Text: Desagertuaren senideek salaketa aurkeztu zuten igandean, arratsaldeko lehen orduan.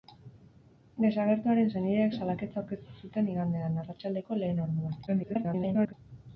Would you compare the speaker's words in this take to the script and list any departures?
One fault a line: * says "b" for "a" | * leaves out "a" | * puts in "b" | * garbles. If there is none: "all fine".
* garbles